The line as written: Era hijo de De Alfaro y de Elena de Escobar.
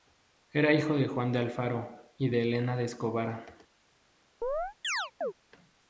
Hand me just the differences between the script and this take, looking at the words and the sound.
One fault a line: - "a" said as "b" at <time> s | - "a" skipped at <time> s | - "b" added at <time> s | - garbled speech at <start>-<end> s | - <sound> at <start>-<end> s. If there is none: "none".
- "Juan" added at 1.1 s
- chirp at 4.4-5.3 s